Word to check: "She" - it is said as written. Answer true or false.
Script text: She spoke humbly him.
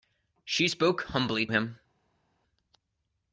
true